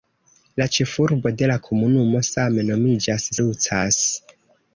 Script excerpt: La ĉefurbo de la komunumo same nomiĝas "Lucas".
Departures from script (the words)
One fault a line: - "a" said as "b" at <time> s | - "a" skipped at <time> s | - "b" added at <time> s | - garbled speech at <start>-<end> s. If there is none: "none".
none